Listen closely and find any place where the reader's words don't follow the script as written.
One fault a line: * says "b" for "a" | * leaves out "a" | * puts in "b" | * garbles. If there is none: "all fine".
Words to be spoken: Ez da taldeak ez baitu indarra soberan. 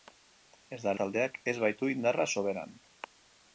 all fine